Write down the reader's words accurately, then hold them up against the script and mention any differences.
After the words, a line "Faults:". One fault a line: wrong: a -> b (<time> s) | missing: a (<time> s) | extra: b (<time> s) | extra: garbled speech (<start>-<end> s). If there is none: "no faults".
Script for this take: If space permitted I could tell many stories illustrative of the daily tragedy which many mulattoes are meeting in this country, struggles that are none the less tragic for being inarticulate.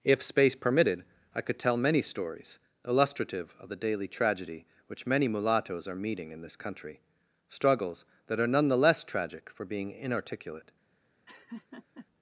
If space permitted I could tell many stories illustrative of the daily tragedy which many mulattoes are meeting in this country, struggles that are none the less tragic for being inarticulate.
Faults:
no faults